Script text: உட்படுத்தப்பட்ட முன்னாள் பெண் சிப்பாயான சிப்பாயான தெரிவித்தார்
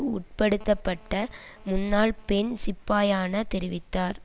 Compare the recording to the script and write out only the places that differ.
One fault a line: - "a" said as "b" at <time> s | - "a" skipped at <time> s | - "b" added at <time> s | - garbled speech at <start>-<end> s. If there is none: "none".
- "சிப்பாயான" skipped at 3.4 s